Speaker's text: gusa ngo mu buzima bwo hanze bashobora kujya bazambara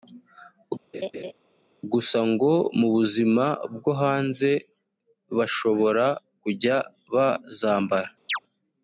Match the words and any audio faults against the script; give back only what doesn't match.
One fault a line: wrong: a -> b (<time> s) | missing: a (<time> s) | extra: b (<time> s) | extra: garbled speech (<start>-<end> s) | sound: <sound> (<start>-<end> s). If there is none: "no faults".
sound: laugh (0.9-1.3 s)
sound: chirp (8.3-8.4 s)